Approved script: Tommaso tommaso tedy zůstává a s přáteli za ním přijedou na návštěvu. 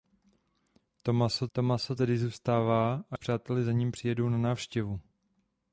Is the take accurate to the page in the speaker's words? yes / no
yes